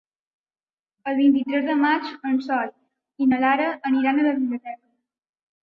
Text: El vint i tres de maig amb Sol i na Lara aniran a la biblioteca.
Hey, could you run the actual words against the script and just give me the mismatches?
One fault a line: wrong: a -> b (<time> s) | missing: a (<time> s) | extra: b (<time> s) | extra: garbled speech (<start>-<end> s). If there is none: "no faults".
wrong: amb -> en (2.3 s)